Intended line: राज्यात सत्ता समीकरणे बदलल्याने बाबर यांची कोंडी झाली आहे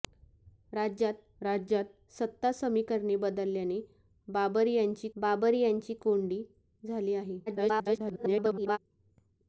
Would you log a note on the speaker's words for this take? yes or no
yes